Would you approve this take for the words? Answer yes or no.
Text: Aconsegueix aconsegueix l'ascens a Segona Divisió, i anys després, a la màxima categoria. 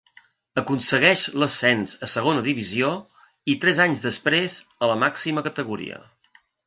no